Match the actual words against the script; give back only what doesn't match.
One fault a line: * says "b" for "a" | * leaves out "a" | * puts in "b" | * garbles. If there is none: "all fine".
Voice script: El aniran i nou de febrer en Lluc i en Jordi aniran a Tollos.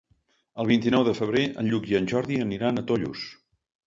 * says "vint" for "aniran"